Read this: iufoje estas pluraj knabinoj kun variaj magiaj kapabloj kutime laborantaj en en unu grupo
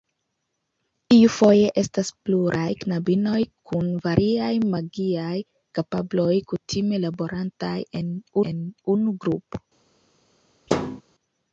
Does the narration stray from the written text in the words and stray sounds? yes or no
yes